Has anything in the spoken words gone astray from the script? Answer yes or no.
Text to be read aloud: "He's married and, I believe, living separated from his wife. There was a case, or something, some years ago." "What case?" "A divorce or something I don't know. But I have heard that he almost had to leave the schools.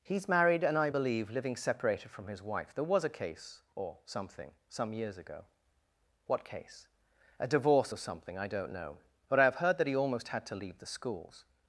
no